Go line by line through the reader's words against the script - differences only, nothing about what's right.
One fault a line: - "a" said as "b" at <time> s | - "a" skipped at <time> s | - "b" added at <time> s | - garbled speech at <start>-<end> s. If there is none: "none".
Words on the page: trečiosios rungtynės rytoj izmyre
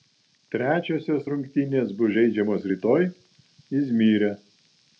- "bus žaidžiamos" added at 2.0 s